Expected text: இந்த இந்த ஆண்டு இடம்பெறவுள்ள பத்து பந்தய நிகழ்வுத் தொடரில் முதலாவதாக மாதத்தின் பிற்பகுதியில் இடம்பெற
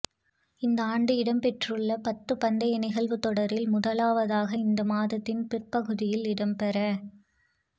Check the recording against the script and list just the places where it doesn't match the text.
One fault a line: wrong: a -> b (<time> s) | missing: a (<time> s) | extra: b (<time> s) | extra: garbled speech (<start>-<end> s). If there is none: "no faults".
missing: இந்த (0.8 s)
extra: இந்த (4.6 s)